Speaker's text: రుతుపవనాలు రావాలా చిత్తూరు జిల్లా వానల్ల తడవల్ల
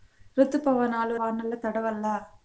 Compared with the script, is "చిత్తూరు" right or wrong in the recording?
wrong